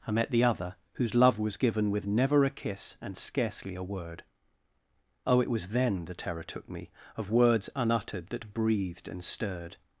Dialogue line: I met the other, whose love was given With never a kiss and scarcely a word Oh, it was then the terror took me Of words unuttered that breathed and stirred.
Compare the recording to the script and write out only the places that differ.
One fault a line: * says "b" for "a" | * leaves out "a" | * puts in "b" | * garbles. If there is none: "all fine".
all fine